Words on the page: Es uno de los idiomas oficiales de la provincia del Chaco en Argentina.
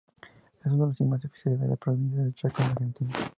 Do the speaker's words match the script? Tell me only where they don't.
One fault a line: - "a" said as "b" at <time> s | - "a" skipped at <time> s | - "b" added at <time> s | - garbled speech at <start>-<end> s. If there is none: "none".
none